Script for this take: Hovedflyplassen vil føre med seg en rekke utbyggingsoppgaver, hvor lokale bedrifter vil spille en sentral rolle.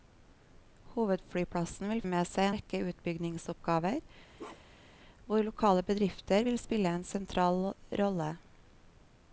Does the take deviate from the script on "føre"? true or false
true